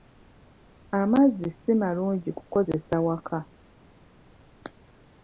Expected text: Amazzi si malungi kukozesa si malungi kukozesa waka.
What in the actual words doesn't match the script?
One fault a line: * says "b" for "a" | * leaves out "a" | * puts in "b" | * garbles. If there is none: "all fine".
* leaves out "si malungi kukozesa"